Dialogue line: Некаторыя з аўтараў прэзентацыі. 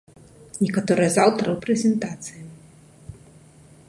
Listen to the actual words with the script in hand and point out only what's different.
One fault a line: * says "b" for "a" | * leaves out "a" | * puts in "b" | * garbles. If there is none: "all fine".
all fine